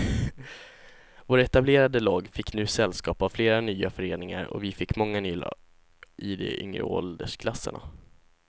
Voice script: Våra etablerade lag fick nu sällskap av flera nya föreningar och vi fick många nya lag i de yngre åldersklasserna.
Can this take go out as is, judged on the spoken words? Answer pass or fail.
fail